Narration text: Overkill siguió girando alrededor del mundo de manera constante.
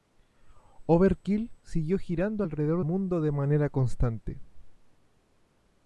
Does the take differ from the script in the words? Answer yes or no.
yes